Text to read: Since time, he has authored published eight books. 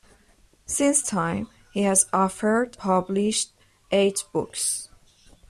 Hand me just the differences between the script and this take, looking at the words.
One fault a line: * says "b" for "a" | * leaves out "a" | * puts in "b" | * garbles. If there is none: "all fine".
all fine